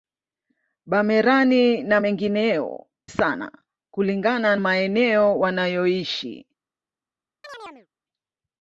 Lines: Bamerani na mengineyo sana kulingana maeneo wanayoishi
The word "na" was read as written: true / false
true